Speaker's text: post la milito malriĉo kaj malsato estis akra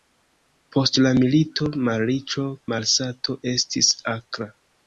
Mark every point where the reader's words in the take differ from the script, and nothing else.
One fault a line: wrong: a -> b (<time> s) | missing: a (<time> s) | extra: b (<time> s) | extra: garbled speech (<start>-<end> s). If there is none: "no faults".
missing: kaj (2.5 s)